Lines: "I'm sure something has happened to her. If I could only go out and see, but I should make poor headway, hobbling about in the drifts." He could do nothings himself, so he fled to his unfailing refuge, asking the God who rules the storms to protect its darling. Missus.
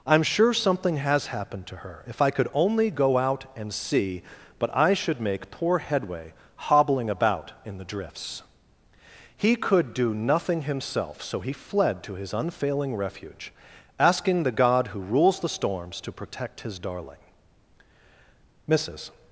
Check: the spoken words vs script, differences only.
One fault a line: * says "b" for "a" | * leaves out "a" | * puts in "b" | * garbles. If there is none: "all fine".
* says "nothing" for "nothings"
* says "his" for "its"